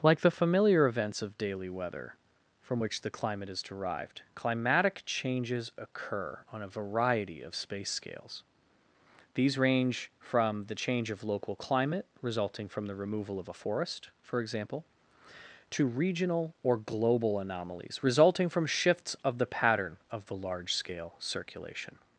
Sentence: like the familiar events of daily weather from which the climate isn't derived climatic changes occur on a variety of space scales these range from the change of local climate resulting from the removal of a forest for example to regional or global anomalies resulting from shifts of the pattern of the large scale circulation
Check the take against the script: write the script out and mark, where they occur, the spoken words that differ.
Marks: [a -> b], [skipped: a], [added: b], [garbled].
like the familiar events of daily weather from which the climate [isn't -> is] derived climatic changes occur on a variety of space scales these range from the change of local climate resulting from the removal of a forest for example to regional or global anomalies resulting from shifts of the pattern of the large scale circulation